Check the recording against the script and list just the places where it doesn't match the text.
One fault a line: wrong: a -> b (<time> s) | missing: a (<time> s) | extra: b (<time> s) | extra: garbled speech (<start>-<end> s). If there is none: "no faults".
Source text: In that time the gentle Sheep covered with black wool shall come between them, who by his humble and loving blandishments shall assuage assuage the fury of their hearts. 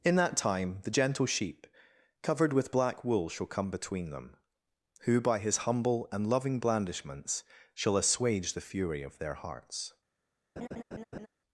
missing: assuage (8.5 s)